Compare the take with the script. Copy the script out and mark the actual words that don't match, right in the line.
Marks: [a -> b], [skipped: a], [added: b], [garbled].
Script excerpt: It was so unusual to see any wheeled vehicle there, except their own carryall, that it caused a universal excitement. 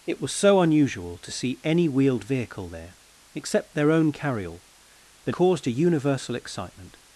It was so unusual to see any wheeled vehicle there, except their own carryall, that [skipped: it] caused a universal excitement.